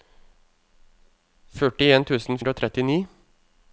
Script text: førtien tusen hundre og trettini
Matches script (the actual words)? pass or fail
pass